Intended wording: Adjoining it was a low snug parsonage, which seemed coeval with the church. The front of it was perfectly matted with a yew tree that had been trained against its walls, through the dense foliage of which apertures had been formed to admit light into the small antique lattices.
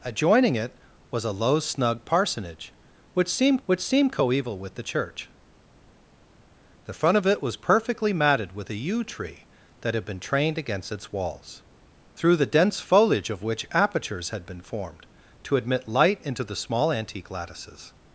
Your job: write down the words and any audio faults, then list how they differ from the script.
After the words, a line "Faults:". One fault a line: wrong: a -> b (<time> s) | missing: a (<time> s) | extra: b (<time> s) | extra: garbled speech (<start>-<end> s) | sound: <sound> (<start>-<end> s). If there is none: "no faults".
Adjoining it was a low snug parsonage, which seemed which seemed coeval with the church. The front of it was perfectly matted with a yew tree that had been trained against its walls, through the dense foliage of which apertures had been formed to admit light into the small antique lattices.
Faults:
extra: which seemed (3.7 s)